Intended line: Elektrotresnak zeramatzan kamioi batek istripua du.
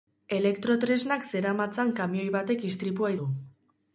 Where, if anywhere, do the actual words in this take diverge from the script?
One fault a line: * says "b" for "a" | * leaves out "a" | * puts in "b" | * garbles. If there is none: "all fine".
all fine